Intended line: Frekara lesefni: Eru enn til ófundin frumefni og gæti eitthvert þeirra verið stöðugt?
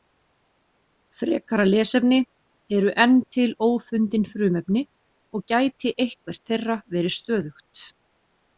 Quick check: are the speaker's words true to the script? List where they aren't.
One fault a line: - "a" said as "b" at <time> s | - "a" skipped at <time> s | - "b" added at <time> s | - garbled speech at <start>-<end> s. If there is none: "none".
none